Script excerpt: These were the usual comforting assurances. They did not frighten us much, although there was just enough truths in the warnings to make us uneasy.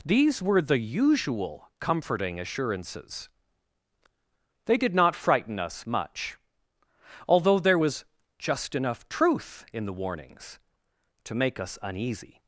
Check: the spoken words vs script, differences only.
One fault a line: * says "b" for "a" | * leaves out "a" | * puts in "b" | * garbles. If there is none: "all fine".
* says "truth" for "truths"